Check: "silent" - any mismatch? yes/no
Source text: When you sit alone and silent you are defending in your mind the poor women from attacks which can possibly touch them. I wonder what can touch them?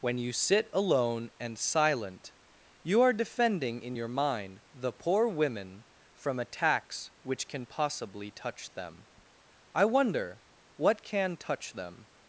no